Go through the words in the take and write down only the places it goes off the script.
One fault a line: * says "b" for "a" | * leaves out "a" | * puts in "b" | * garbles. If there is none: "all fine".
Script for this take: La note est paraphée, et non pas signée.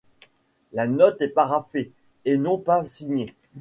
all fine